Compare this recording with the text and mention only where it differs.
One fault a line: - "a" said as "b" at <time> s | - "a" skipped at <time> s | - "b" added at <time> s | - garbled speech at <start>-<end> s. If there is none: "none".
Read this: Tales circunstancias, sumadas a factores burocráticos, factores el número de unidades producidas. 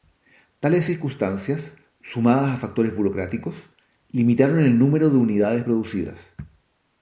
- "factores" said as "limitaron" at 4.1 s